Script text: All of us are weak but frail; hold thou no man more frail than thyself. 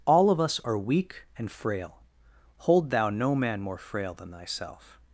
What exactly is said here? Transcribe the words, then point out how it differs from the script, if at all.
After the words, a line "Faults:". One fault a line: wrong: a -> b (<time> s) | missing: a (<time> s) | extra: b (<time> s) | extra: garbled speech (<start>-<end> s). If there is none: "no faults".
All of us are weak and frail; hold thou no man more frail than thyself.
Faults:
wrong: but -> and (1.4 s)